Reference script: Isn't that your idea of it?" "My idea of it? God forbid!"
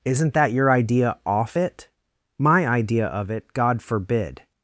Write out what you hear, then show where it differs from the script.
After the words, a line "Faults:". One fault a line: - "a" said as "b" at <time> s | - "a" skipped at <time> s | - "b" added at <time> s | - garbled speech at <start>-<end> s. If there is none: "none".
Isn't that your idea off it?" "My idea of it? God forbid!"
Faults:
- "of" said as "off" at 1.2 s